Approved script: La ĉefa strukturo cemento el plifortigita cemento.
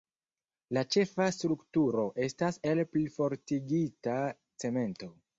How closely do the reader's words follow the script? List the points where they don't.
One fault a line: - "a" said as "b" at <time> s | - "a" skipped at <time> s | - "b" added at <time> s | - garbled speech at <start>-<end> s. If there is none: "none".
- "cemento" said as "estas" at 2.3 s